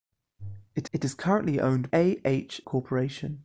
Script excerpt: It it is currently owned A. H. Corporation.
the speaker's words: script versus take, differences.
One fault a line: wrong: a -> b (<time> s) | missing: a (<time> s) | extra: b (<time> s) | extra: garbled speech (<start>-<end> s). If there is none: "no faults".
no faults